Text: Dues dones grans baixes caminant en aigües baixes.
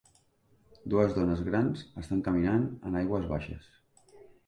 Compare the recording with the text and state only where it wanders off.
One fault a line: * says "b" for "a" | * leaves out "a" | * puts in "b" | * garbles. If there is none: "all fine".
* says "estan" for "baixes"